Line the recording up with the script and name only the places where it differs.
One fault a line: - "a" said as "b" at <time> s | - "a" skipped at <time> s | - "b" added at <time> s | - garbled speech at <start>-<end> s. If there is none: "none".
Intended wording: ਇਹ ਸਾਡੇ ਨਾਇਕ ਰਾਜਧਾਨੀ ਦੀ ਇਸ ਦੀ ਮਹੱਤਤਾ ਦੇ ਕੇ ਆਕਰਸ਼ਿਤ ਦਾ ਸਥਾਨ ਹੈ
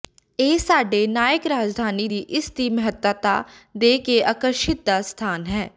none